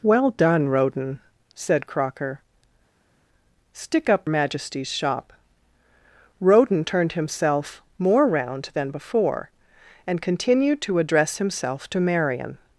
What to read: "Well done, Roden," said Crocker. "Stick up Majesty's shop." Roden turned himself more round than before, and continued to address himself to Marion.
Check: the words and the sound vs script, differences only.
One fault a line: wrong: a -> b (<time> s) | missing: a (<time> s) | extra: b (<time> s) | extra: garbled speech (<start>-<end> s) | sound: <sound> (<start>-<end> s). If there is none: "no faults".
no faults